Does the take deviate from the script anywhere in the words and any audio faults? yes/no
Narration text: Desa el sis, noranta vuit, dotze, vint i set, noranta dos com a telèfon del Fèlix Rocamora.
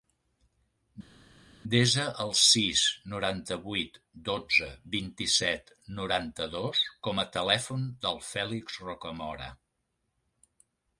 no